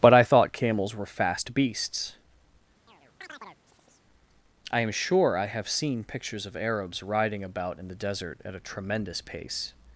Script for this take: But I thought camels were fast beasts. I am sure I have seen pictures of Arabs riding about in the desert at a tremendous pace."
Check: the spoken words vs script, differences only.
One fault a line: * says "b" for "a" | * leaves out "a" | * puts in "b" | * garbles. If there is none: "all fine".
all fine